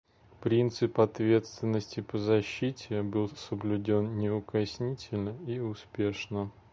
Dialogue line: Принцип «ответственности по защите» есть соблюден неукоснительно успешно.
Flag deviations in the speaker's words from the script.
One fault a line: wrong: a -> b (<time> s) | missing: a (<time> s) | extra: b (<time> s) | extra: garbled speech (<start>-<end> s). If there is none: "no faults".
wrong: есть -> был (3.0 s)
extra: и (5.5 s)